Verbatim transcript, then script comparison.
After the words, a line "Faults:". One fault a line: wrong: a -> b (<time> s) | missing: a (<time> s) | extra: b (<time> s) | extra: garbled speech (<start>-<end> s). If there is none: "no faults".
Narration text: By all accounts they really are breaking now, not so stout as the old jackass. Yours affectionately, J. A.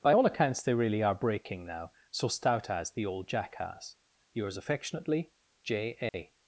By all accounts they really are breaking now, so stout as the old jackass. Yours affectionately, J. A.
Faults:
missing: not (1.9 s)